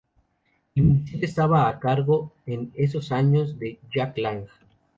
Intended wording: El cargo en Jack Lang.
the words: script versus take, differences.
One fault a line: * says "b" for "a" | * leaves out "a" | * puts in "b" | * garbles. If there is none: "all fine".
* puts in "ministerio estaba a"
* puts in "esos años de"